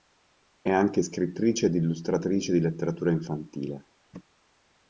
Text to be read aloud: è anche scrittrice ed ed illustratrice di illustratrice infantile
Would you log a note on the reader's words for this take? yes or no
yes